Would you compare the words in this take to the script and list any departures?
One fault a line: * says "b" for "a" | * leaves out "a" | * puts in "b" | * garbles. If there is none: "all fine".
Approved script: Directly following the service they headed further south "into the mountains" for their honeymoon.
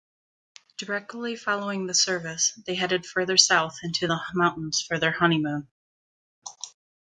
all fine